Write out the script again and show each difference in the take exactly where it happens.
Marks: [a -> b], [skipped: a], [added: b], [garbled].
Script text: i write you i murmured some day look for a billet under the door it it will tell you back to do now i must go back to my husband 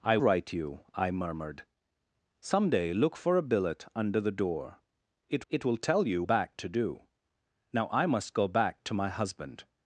i write you i murmured some day look for a billet under the door it it will tell you back to do now i must go back to my husband